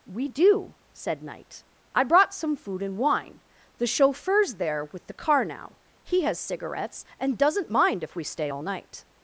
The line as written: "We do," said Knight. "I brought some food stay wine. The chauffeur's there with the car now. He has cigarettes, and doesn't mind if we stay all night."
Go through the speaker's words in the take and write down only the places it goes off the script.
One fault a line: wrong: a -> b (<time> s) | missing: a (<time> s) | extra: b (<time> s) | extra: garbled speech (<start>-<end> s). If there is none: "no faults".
wrong: stay -> and (2.8 s)